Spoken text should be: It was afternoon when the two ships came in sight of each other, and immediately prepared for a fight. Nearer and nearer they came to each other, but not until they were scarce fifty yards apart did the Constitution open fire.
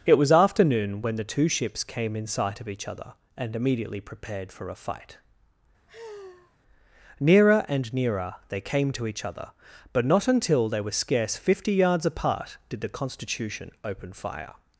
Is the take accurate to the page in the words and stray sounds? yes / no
no